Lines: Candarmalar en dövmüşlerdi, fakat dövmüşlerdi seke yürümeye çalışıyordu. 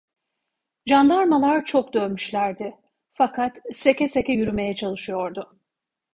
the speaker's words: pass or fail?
fail